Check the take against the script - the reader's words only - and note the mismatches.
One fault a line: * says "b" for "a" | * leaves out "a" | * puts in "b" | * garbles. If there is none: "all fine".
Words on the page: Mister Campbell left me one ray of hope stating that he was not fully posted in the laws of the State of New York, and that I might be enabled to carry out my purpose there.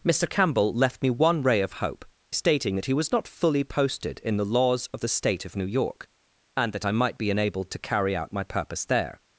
all fine